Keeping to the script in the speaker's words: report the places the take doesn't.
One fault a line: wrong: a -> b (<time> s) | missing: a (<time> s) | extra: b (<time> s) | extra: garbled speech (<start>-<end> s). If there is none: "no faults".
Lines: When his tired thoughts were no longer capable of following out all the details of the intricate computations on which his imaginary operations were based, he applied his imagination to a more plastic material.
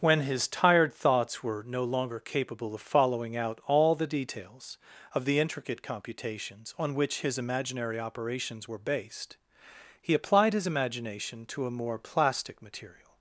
no faults